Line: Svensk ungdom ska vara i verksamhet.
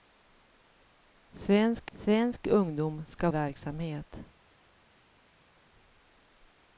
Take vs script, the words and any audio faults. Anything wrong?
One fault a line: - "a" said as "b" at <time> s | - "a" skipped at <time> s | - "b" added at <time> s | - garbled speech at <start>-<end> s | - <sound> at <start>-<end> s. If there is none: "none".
- "svensk" added at 1.9 s
- "vara i" skipped at 3.3 s